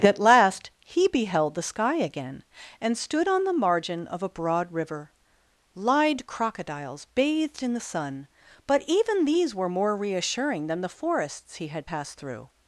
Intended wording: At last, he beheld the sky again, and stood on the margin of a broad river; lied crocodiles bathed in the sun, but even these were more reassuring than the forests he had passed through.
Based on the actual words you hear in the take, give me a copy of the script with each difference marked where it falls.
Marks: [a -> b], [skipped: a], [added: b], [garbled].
At last, he beheld the sky again, and stood on the margin of a broad river; lied crocodiles bathed in the sun, but even these were more reassuring than the forests he had passed through.